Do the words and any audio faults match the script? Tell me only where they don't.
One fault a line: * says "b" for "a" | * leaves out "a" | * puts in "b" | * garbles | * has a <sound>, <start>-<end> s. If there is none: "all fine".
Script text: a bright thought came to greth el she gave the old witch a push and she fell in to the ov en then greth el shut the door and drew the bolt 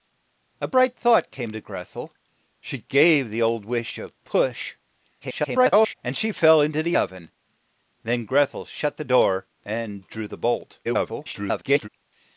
* garbles
* garbles